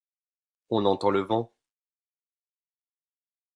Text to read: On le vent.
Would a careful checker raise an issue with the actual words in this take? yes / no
yes